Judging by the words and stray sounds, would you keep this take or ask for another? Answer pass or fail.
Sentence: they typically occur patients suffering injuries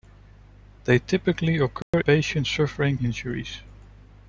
fail